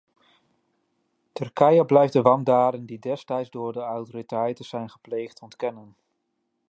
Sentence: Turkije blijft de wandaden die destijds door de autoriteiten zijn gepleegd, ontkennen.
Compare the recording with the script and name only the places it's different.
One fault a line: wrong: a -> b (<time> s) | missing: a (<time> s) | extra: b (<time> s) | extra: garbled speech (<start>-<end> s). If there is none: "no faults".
no faults